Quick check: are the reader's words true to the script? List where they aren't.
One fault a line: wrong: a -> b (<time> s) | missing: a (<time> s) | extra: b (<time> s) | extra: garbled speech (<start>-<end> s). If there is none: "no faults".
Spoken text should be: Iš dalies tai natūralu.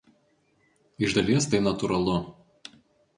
no faults